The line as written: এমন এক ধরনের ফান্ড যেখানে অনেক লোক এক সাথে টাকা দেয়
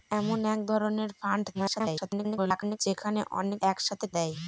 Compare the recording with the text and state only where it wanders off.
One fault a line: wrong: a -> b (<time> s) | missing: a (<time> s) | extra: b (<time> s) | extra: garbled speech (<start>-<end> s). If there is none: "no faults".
extra: garbled speech (1.5-2.8 s)
missing: লোক (3.6 s)
missing: টাকা (4.0 s)